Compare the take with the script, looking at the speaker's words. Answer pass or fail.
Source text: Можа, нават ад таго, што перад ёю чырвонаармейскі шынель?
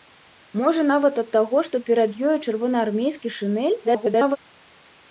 fail